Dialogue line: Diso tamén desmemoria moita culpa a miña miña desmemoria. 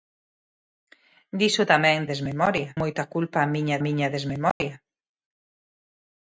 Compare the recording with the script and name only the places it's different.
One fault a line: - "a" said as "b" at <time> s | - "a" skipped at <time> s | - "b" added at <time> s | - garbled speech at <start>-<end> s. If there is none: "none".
none